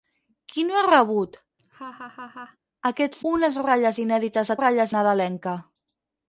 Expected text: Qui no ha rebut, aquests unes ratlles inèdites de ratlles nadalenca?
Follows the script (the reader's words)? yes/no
yes